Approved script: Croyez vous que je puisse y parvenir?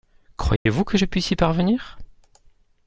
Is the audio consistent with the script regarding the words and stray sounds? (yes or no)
no